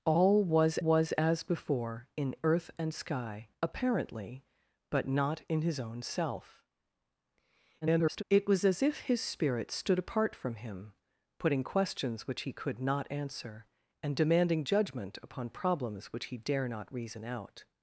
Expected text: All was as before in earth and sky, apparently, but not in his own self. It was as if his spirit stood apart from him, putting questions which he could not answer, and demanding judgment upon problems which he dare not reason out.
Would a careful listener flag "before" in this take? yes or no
no